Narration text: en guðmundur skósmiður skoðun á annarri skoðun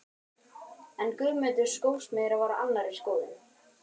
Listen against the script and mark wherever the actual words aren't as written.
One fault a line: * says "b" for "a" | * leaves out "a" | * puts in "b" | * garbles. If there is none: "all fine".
* says "var" for "skoðun"